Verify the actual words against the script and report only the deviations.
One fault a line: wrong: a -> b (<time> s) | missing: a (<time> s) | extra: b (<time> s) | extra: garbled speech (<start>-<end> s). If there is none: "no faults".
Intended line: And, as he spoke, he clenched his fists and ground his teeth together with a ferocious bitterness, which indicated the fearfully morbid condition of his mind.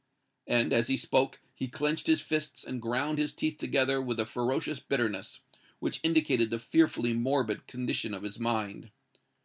no faults